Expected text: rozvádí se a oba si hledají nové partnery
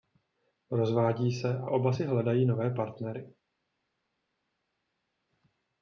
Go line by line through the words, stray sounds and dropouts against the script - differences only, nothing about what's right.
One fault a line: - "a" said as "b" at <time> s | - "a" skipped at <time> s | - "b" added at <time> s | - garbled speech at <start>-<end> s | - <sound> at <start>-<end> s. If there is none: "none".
none